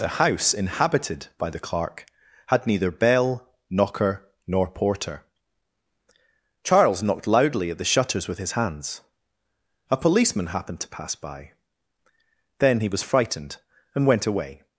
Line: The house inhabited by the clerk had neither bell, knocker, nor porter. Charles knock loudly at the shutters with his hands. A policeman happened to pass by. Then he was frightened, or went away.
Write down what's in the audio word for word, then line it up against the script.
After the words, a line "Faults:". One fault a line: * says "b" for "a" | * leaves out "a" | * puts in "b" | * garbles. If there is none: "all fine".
The house inhabited by the clerk had neither bell, knocker, nor porter. Charles knocked loudly at the shutters with his hands. A policeman happened to pass by. Then he was frightened, and went away.
Faults:
* says "knocked" for "knock"
* says "and" for "or"